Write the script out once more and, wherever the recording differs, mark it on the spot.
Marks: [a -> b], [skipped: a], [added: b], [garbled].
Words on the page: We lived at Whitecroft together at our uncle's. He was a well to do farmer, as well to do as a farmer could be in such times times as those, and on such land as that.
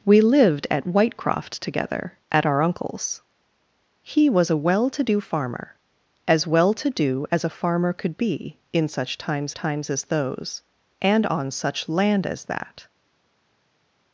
We lived at Whitecroft together at our uncle's. He was a well to do farmer, as well to do as a farmer could be in such times times as those, and on such land as that.